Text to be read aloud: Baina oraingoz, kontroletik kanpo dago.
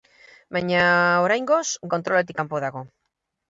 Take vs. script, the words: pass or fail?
pass